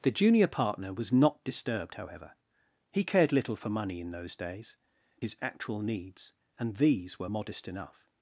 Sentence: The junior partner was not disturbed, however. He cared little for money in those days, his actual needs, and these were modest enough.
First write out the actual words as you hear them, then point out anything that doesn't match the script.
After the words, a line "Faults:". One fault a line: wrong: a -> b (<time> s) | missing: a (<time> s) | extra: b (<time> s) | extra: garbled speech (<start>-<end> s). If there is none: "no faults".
The junior partner was not disturbed, however. He cared little for money in those days, his actual needs, and these were modest enough.
Faults:
no faults